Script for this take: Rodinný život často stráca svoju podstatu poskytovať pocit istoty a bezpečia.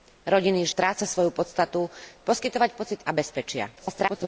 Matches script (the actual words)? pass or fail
fail